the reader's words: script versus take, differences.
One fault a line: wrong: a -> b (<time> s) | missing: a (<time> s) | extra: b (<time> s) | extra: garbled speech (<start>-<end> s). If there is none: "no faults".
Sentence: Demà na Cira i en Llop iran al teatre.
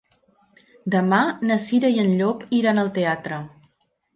no faults